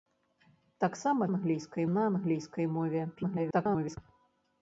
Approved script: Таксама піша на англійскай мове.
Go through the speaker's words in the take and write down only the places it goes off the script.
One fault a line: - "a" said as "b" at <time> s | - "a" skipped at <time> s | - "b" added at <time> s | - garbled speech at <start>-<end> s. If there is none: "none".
- "піша" said as "англійскай" at 1.3 s
- garbled speech at 3.2-4.0 s